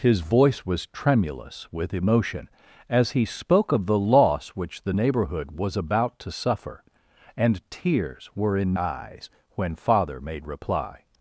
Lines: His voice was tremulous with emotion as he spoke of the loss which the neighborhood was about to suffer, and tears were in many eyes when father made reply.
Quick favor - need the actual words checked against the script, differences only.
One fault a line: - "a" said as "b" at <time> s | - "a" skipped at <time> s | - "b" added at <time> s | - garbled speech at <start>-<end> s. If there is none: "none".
- "many" skipped at 8.8 s